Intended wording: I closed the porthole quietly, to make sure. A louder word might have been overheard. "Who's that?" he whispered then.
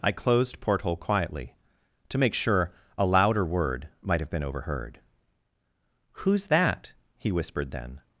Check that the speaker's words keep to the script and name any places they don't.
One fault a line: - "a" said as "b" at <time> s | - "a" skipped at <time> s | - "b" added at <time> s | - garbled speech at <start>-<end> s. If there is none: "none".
- "the" skipped at 0.6 s